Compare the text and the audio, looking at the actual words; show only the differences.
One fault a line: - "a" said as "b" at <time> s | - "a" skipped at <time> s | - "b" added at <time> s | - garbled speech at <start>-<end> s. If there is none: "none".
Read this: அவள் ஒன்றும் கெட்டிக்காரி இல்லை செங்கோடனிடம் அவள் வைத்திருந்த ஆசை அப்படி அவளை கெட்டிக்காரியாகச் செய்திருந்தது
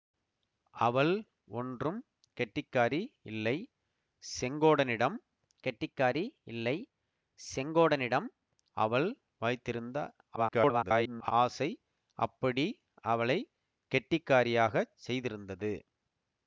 - "கெட்டிக்காரி இல்லை செங்கோடனிடம்" added at 5.6 s
- garbled speech at 10.4-11.3 s